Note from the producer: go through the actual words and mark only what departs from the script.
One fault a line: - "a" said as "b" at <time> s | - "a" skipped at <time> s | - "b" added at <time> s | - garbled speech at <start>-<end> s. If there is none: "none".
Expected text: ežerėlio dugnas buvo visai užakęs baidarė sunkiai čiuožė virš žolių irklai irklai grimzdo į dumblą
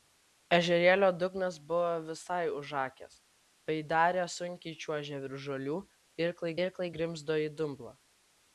none